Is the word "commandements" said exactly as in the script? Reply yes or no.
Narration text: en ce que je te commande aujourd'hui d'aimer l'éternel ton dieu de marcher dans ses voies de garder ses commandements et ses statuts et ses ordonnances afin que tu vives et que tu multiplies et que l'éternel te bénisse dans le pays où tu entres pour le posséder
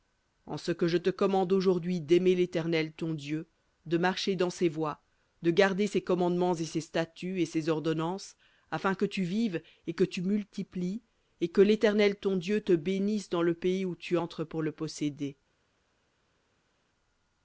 yes